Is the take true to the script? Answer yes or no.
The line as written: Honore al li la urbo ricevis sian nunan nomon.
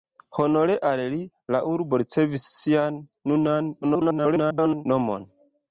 no